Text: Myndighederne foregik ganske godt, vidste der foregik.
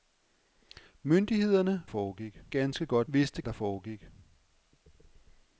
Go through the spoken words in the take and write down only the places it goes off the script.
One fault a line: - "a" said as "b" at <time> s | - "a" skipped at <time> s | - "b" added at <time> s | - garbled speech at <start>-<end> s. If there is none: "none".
none